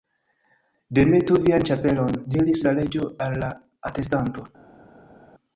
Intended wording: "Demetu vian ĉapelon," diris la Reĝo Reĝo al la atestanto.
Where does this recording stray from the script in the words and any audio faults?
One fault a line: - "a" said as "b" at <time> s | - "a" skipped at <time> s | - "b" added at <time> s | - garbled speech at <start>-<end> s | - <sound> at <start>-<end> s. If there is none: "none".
- "Reĝo" skipped at 3.1 s